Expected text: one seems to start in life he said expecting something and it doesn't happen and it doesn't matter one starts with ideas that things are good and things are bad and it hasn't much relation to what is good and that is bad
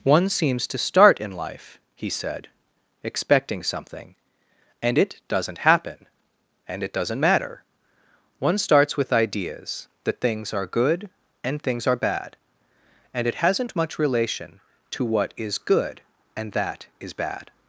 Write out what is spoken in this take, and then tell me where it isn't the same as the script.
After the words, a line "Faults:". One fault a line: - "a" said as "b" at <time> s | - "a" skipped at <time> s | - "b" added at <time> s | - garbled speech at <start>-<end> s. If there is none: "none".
one seems to start in life he said expecting something and it doesn't happen and it doesn't matter one starts with ideas that things are good and things are bad and it hasn't much relation to what is good and that is bad
Faults:
none